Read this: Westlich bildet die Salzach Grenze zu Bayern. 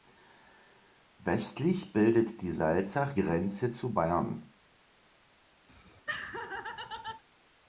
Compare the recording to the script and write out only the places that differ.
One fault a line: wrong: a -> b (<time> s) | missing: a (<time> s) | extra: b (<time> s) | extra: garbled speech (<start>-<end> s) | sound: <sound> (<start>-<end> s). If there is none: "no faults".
sound: laugh (5.7-7.2 s)